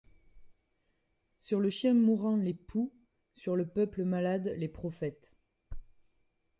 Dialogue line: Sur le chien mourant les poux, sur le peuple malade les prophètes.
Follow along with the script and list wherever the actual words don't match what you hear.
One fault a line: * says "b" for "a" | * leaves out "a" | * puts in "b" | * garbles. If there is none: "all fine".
all fine